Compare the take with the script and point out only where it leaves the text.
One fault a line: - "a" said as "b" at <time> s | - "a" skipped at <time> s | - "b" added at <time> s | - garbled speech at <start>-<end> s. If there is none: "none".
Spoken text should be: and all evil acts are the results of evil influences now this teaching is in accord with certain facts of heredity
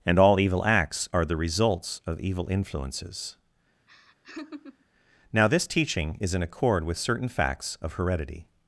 none